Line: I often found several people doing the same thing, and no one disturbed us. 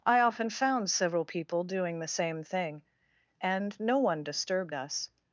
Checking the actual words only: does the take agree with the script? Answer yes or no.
yes